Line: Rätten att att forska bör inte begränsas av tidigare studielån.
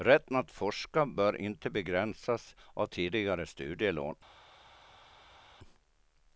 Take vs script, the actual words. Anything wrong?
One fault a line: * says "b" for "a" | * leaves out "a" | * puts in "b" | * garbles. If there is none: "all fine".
* leaves out "att"